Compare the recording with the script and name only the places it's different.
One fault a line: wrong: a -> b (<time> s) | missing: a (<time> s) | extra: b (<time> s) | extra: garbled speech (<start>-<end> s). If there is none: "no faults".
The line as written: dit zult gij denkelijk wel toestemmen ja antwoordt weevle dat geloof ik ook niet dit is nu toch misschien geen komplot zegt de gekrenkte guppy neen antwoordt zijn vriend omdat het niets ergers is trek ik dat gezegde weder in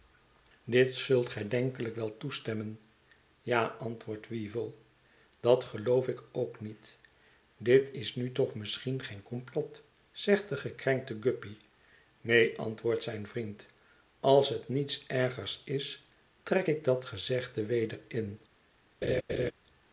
wrong: omdat -> als (14.2 s)